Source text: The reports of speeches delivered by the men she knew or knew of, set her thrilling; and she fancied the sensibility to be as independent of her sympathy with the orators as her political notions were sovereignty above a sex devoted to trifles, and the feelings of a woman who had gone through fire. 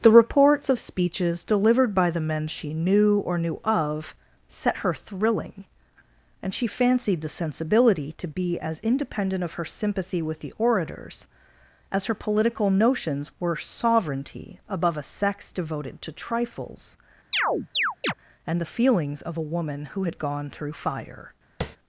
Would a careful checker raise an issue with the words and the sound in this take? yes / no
yes